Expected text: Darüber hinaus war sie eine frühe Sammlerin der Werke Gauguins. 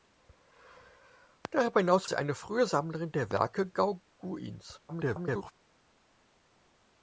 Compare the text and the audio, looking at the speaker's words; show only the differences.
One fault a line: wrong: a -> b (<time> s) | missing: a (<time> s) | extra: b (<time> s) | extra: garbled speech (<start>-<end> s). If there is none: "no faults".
missing: war (2.1 s)
extra: garbled speech (4.9-5.5 s)